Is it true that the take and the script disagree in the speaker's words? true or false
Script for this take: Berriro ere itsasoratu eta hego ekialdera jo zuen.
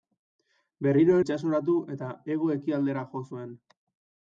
true